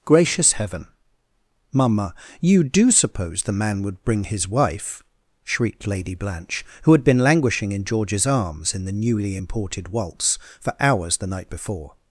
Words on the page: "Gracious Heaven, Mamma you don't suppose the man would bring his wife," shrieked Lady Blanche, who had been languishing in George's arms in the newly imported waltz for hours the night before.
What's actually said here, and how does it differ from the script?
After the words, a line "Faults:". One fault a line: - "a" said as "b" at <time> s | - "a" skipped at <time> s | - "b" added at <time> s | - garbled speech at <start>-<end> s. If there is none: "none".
"Gracious Heaven, Mamma you do suppose the man would bring his wife," shrieked Lady Blanche, who had been languishing in George's arms in the newly imported waltz for hours the night before.
Faults:
- "don't" said as "do" at 2.6 s